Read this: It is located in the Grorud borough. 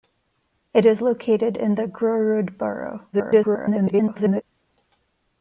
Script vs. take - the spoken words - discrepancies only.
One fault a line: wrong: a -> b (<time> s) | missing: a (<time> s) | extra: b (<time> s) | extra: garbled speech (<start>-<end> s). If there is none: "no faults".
extra: garbled speech (3.1-4.4 s)